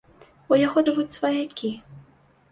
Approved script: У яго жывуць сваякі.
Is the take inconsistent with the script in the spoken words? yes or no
no